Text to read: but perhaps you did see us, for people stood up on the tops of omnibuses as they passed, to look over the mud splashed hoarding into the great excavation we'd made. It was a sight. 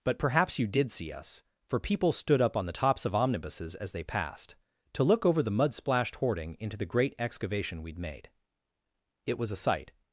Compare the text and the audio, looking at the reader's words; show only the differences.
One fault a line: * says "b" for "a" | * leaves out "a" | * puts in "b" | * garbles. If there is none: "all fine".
all fine